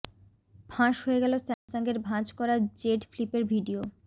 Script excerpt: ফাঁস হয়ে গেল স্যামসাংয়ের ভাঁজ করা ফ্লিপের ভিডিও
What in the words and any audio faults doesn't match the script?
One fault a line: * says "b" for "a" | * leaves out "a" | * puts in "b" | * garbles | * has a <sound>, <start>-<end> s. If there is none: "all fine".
* has a dropout, 1.5-1.7 s
* puts in "জেড"